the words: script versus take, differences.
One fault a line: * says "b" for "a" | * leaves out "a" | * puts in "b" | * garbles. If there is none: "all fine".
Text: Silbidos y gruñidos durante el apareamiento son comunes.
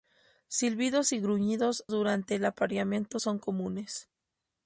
all fine